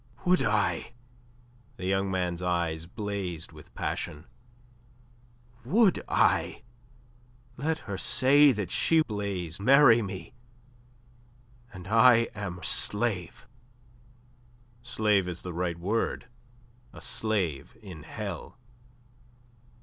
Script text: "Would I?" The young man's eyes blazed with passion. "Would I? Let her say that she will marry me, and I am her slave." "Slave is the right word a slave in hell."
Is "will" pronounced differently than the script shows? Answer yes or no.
yes